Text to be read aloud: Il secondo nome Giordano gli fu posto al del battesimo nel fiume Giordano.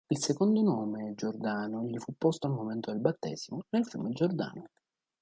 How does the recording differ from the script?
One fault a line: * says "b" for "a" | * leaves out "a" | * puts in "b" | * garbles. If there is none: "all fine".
* puts in "momento"